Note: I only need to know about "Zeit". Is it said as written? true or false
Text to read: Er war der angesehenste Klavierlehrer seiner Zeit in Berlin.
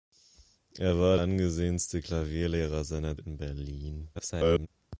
false